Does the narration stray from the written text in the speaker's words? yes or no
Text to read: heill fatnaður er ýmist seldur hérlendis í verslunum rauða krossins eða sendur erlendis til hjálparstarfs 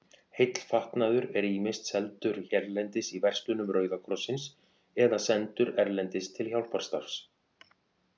no